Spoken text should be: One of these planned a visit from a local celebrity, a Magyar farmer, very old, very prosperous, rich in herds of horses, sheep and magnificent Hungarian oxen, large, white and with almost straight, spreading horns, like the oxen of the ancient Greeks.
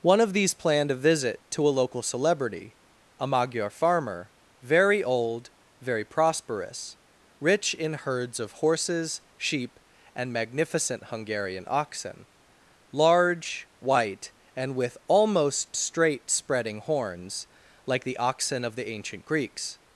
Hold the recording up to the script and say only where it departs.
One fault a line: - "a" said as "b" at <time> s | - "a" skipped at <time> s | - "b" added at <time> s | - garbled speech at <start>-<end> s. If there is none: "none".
- "from" said as "to" at 1.5 s